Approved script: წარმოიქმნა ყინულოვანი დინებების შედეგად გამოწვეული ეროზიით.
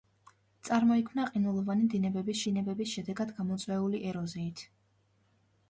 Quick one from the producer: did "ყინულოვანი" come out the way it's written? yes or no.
yes